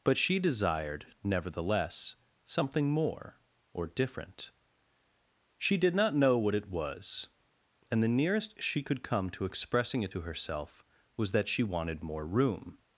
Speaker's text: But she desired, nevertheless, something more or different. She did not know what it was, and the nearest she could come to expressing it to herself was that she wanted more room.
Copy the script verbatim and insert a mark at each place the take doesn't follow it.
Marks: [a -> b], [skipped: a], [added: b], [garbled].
But she desired, nevertheless, something more or different. She did not know what it was, and the nearest she could come to expressing it to herself was that she wanted more room.